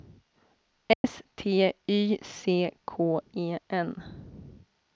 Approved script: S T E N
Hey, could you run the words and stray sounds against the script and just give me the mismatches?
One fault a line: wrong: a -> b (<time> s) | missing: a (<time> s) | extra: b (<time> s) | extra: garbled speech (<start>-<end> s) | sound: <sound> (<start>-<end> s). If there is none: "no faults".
sound: dropout (0.9-1.0 s)
extra: Y C K (1.9 s)